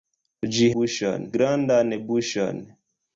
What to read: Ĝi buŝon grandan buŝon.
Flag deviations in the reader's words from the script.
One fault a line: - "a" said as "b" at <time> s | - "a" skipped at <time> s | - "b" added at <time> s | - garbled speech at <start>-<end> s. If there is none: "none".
none